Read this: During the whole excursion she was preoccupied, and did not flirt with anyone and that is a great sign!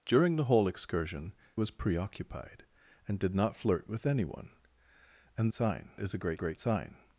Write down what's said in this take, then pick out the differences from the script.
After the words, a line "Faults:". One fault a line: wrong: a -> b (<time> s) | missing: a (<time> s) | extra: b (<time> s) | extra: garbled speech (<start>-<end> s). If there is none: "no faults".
During the whole excursion was preoccupied, and did not flirt with anyone and sign is a great great sign!
Faults:
missing: she (1.3 s)
wrong: that -> sign (5.5 s)
extra: great (6.4 s)